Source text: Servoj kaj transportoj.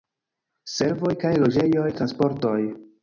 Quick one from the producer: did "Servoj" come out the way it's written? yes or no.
yes